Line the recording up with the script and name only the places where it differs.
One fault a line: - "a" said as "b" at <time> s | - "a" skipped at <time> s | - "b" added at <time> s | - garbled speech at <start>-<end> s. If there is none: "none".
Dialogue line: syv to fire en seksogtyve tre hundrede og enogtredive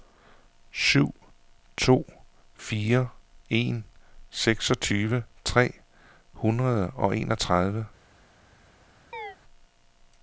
none